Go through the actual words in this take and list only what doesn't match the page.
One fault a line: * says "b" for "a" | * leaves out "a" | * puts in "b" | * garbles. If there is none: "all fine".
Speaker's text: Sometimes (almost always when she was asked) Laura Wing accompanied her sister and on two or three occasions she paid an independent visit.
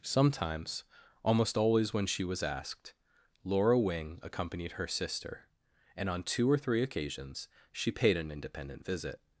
all fine